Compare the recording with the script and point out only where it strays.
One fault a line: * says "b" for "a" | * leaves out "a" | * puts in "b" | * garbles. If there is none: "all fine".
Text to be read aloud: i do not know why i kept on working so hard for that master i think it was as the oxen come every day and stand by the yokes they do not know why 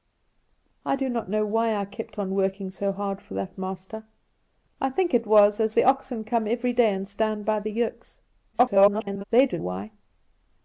* garbles
* leaves out "not know"